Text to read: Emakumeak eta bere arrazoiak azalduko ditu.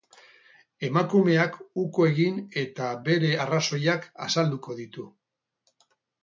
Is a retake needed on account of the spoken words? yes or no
yes